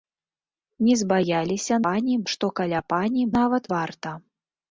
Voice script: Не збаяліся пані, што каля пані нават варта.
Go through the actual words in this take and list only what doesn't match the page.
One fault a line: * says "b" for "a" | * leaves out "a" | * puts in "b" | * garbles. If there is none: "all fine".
all fine